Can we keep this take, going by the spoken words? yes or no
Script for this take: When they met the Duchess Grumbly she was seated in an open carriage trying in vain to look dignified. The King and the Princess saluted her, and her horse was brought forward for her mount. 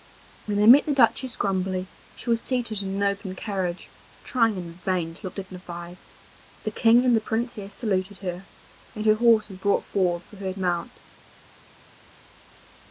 yes